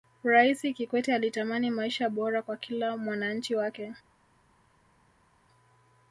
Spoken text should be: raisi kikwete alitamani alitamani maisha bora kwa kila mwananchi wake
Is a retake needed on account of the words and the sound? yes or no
yes